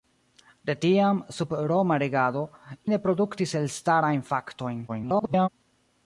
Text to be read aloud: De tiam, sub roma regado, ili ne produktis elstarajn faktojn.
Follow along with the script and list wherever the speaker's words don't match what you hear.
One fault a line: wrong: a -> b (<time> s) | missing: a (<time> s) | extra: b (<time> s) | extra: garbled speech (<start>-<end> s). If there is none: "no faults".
missing: ili (2.4 s)
extra: garbled speech (4.9-5.5 s)